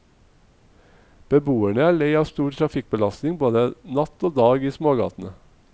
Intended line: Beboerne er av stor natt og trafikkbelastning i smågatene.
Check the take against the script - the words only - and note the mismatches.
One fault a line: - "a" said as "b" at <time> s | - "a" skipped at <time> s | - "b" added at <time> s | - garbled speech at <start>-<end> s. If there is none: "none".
- "lei" added at 2.0 s
- "trafikkbelastning både" added at 2.6 s
- "trafikkbelastning" said as "dag" at 4.4 s